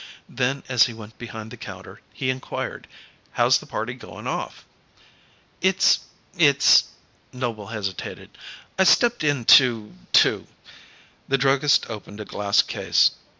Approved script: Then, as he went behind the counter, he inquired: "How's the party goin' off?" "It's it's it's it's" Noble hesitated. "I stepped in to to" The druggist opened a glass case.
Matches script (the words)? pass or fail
fail